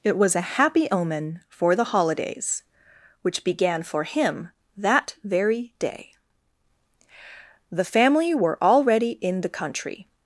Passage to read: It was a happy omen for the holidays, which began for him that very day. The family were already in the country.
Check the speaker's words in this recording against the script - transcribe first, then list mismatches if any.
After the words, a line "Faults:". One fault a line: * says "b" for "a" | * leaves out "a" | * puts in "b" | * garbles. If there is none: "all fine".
It was a happy omen for the holidays, which began for him that very day. The family were already in the country.
Faults:
all fine